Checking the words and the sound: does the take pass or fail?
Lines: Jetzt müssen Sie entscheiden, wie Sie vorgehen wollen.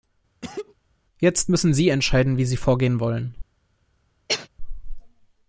fail